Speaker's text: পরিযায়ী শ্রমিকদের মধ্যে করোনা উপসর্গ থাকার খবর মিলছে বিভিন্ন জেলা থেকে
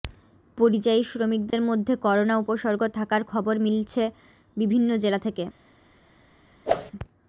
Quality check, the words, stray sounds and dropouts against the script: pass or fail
fail